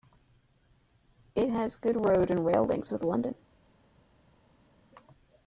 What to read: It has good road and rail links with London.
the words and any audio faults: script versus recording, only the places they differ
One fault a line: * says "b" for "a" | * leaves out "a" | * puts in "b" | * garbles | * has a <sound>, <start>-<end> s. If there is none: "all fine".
all fine